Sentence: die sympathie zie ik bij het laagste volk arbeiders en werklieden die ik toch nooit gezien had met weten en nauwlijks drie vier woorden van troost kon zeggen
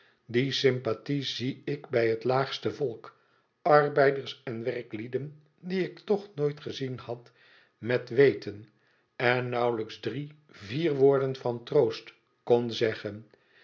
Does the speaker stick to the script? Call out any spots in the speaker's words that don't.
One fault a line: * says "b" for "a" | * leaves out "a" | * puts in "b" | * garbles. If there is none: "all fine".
all fine